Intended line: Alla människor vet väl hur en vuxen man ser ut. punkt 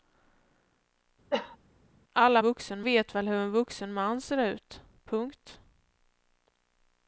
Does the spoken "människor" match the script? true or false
false